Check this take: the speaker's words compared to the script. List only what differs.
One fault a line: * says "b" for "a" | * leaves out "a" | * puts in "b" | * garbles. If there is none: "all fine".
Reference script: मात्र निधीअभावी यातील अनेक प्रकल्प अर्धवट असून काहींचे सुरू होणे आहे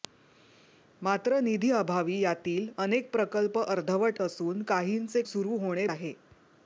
all fine